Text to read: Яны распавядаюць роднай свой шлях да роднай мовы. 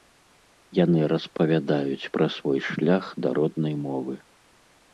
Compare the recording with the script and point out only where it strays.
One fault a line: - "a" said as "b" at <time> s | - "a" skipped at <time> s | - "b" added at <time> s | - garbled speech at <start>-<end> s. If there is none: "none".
- "роднай" said as "пра" at 2.2 s